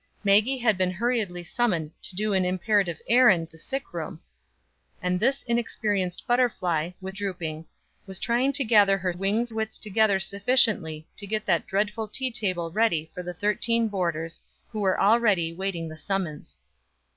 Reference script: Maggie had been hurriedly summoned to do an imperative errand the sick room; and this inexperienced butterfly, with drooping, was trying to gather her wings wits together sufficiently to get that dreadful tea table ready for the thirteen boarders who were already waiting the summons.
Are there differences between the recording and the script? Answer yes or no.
no